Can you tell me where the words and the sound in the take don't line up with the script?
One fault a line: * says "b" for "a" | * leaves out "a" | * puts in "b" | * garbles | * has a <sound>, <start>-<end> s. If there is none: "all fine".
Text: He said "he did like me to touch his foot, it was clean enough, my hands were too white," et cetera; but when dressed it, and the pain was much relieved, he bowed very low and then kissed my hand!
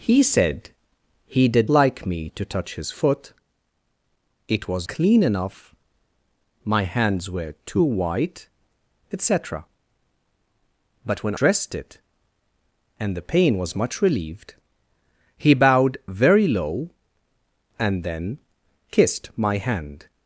all fine